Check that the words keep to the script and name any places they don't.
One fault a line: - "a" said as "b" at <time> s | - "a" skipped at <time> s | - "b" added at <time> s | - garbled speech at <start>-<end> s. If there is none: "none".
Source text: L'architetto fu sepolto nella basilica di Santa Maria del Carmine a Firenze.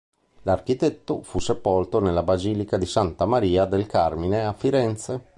none